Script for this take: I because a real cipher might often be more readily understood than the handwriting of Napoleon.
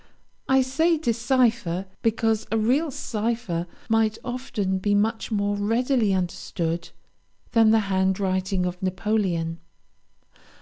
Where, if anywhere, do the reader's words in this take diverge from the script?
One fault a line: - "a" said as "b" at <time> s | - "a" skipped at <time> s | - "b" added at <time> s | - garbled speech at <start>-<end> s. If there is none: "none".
- "say decipher" added at 0.6 s
- "much" added at 5.0 s